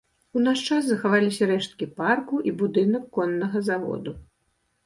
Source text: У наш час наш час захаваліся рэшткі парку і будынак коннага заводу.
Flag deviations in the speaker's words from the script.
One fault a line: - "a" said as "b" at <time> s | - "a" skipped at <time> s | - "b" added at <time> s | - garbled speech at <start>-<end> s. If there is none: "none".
- "наш час" skipped at 0.9 s